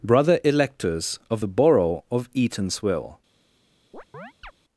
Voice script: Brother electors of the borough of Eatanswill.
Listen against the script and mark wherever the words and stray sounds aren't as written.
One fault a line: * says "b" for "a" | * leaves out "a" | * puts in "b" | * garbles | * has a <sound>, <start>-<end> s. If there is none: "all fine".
* has a chirp, 3.9-4.5 s